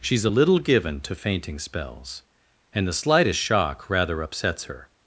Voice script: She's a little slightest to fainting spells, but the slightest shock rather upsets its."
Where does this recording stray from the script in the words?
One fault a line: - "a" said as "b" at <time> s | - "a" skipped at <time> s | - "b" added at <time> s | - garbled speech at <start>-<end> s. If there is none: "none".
- "slightest" said as "given" at 0.6 s
- "but" said as "and" at 2.7 s
- "its" said as "her" at 4.7 s